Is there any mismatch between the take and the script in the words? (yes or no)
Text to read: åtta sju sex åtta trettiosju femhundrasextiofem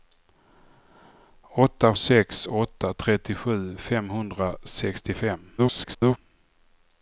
yes